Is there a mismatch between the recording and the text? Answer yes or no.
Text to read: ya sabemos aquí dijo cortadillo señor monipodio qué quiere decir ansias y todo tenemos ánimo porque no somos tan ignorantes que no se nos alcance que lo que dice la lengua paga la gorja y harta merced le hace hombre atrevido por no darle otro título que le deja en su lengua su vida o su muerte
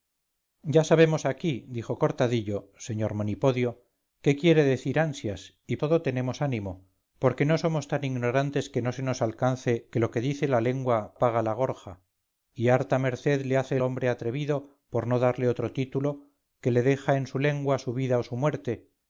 no